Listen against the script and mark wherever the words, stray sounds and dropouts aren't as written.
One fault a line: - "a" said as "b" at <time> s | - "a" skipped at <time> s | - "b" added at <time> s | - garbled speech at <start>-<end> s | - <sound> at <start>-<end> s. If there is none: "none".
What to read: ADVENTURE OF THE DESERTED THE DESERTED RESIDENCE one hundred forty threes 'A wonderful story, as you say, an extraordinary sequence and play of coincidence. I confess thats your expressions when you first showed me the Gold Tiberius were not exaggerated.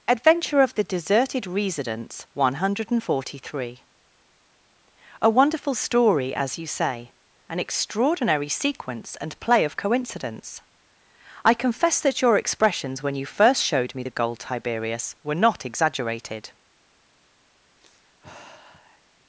- "THE DESERTED" skipped at 1.4 s
- "threes" said as "three" at 3.4 s
- "thats" said as "that" at 12.0 s
- sigh at 17.8-19.0 s